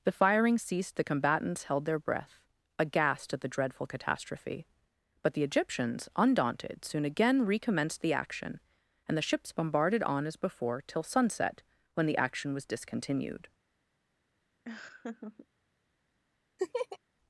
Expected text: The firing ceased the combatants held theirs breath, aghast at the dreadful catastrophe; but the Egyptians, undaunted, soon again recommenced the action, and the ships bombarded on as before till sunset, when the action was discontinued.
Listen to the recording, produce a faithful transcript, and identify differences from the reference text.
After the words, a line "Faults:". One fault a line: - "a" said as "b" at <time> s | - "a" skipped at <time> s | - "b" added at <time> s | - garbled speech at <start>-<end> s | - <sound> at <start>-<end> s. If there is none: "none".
The firing ceased the combatants held their breath, aghast at the dreadful catastrophe; but the Egyptians, undaunted, soon again recommenced the action, and the ships bombarded on as before till sunset, when the action was discontinued.
Faults:
- "theirs" said as "their" at 1.8 s
- laugh at 14.6-15.5 s
- laugh at 16.6-17.0 s